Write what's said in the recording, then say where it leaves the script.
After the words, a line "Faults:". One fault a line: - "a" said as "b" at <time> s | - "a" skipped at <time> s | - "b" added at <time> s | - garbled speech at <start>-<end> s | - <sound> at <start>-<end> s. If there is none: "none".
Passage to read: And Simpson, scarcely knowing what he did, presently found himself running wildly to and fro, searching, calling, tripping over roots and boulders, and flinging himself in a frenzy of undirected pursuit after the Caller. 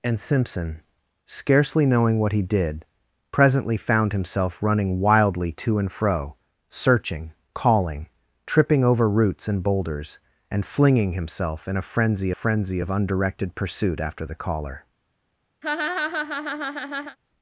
And Simpson, scarcely knowing what he did, presently found himself running wildly to and fro, searching, calling, tripping over roots and boulders, and flinging himself in a frenzy frenzy of undirected pursuit after the Caller.
Faults:
- "frenzy" added at 12.3 s
- laugh at 15.6-17.2 s